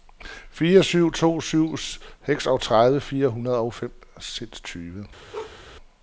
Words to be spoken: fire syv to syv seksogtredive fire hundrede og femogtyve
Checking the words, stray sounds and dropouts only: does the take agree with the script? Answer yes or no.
no